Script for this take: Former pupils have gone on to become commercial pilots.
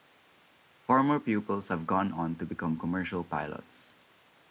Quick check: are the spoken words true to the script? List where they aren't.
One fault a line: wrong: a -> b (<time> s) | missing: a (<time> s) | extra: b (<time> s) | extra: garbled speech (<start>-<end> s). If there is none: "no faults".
no faults